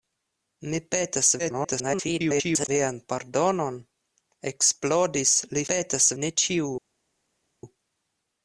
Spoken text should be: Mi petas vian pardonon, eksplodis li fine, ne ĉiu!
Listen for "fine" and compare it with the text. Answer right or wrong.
wrong